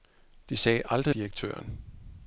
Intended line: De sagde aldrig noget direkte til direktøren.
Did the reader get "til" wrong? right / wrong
wrong